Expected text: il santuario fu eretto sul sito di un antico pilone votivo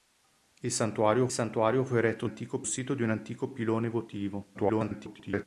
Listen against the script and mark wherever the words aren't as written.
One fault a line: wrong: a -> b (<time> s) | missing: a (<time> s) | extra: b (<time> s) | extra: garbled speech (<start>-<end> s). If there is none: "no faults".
extra: santuario (1.3 s)
wrong: sul -> antico (2.2 s)
extra: garbled speech (4.5-5.5 s)